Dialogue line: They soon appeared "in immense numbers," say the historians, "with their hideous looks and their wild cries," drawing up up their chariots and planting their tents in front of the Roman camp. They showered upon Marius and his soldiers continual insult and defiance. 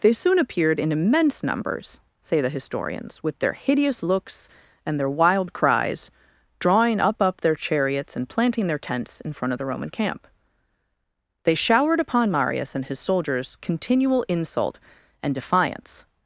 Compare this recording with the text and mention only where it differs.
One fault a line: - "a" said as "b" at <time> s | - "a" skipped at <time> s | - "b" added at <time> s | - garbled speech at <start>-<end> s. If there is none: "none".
none